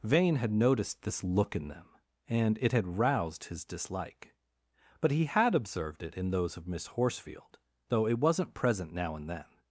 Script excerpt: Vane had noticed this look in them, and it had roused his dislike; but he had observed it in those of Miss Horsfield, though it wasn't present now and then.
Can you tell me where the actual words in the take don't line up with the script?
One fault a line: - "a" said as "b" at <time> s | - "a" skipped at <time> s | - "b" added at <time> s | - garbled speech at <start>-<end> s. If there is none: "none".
none